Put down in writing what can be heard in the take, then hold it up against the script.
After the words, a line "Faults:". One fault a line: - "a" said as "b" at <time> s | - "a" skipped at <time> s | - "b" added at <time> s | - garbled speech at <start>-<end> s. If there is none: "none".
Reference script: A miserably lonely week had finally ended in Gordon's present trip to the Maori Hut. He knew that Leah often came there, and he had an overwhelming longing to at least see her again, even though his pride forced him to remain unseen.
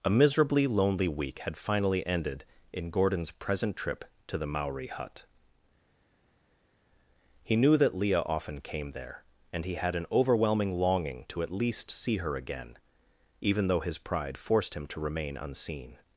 A miserably lonely week had finally ended in Gordon's present trip to the Maori Hut. He knew that Leah often came there, and he had an overwhelming longing to at least see her again, even though his pride forced him to remain unseen.
Faults:
none